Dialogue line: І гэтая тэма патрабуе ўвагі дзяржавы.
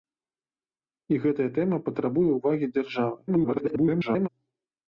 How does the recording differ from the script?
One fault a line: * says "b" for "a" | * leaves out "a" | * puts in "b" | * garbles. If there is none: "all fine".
* garbles